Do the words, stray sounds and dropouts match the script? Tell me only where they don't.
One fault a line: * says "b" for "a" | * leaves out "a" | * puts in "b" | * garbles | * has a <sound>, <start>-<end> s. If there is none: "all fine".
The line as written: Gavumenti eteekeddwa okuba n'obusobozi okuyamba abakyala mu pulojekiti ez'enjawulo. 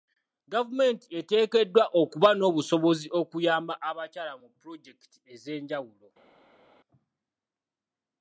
all fine